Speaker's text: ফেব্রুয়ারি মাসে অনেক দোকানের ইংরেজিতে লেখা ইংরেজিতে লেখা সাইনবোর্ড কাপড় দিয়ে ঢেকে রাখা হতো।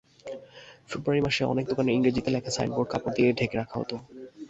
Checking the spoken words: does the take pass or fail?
fail